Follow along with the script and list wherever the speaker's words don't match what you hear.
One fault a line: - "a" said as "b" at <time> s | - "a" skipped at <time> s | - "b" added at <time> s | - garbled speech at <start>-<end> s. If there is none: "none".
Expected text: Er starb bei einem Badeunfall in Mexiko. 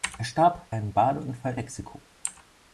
- "bei" skipped at 0.8 s
- "in" skipped at 1.6 s